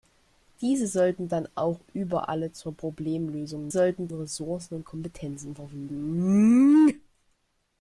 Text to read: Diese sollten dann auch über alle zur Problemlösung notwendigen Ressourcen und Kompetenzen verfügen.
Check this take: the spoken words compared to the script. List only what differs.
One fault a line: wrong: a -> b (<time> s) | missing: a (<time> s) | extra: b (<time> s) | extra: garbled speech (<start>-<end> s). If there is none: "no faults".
wrong: notwendigen -> sollten (3.7 s)